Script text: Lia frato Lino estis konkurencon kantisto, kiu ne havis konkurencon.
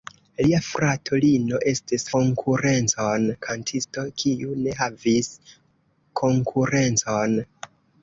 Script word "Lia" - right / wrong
right